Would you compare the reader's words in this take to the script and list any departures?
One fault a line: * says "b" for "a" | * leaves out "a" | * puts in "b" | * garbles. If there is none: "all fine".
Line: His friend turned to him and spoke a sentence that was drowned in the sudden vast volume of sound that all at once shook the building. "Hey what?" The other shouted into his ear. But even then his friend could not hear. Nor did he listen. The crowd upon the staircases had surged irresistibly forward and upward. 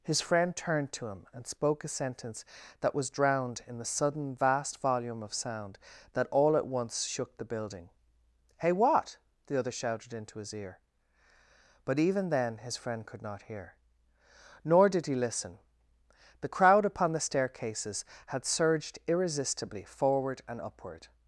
all fine